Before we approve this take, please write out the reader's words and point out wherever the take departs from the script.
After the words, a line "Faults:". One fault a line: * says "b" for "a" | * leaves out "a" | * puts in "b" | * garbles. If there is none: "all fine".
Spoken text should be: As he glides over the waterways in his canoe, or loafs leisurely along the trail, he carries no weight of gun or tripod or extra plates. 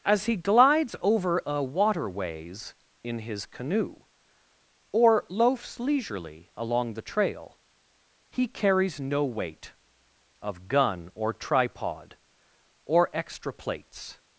As he glides over a waterways in his canoe, or loafs leisurely along the trail, he carries no weight of gun or tripod or extra plates.
Faults:
* says "a" for "the"